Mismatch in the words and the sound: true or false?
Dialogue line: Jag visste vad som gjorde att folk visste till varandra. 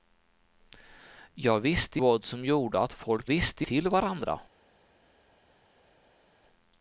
false